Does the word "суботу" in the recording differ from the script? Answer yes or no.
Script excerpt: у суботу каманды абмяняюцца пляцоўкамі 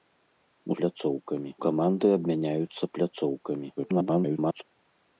yes